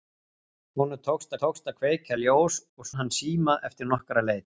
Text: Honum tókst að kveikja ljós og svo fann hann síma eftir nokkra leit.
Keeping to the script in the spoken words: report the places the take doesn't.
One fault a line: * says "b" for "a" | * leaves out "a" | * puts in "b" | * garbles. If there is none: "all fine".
* puts in "tókst"
* leaves out "svo fann"